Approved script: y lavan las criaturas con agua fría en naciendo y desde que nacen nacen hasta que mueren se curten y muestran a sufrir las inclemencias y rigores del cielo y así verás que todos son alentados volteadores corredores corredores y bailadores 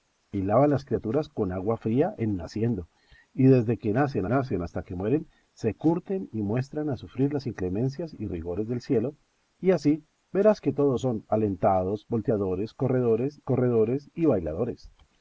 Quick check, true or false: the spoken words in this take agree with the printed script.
true